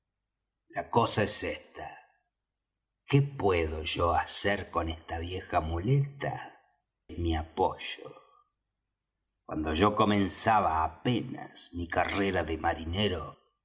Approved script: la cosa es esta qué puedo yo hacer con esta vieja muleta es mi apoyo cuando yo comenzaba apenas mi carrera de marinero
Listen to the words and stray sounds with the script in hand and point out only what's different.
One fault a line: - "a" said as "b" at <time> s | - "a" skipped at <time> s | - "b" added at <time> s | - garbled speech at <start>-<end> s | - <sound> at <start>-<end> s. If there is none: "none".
none